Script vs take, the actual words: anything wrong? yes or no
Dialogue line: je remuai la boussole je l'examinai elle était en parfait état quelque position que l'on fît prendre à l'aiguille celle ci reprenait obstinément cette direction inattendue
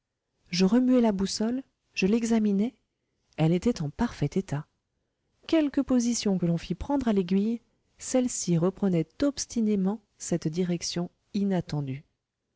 no